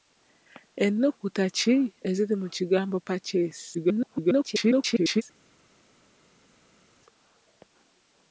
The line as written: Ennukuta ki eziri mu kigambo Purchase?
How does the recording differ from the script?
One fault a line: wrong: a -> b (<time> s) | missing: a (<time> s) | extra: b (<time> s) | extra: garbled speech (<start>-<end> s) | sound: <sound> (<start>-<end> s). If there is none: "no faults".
extra: garbled speech (3.7-5.2 s)